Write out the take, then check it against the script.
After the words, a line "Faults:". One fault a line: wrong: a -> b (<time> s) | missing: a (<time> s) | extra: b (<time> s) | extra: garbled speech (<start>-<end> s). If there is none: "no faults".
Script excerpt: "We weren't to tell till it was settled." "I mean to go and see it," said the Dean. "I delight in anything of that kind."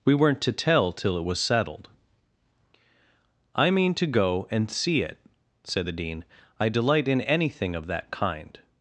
"We weren't to tell till it was settled." "I mean to go and see it," said the Dean. "I delight in anything of that kind."
Faults:
no faults